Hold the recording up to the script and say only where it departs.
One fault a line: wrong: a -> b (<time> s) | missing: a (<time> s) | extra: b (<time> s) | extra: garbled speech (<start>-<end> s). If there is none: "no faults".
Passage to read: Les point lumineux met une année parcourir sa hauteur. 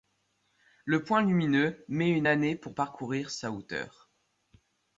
wrong: Les -> Le (0.8 s)
extra: pour (2.5 s)